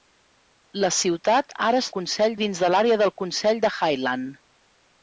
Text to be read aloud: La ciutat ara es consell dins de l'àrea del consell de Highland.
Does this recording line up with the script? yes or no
yes